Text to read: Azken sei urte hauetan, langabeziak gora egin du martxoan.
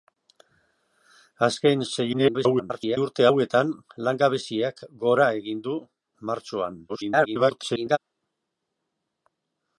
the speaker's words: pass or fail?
fail